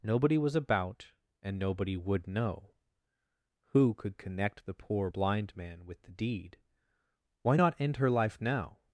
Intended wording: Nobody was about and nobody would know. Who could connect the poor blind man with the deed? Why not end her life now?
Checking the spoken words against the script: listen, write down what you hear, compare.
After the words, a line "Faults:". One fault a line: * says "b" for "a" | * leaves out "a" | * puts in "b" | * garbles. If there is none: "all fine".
Nobody was about and nobody would know. Who could connect the poor blind man with the deed? Why not end her life now?
Faults:
all fine